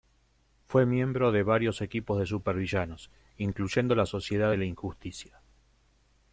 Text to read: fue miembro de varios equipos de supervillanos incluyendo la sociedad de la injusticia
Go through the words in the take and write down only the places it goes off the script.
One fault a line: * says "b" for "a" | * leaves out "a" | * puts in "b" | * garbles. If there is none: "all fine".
all fine